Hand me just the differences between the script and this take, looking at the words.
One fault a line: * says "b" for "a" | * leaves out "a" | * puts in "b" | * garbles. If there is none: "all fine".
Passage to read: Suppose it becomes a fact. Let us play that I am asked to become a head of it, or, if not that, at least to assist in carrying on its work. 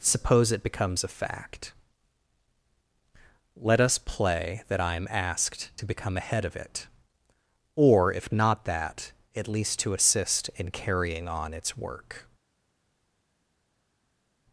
all fine